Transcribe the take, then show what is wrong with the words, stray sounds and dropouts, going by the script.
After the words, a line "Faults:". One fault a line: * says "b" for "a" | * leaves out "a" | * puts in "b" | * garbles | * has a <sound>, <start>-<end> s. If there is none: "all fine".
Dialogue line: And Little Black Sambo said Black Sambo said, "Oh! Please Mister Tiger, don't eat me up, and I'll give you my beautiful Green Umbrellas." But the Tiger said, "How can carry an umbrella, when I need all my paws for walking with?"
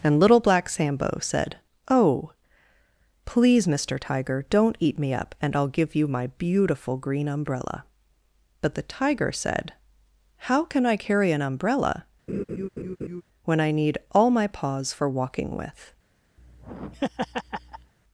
And Little Black Sambo said, "Oh! Please Mister Tiger, don't eat me up, and I'll give you my beautiful Green Umbrella." But the Tiger said, "How can I carry an umbrella, when I need all my paws for walking with?"
Faults:
* leaves out "Black Sambo said"
* says "Umbrella" for "Umbrellas"
* puts in "I"
* has a laugh, 12.3-13.2 s
* has a laugh, 16.4-17.9 s